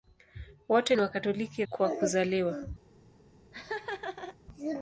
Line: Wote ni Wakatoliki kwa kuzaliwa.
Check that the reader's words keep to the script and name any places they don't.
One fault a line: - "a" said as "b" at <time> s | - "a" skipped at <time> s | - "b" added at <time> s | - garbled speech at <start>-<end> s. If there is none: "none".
none